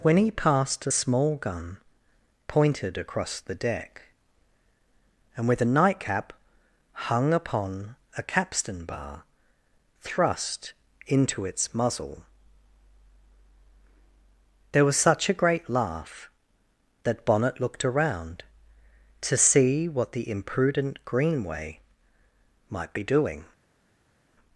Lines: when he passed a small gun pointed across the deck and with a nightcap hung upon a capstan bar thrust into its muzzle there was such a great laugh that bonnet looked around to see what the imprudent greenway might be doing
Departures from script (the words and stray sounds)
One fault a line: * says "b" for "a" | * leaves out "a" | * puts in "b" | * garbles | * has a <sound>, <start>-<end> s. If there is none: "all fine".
all fine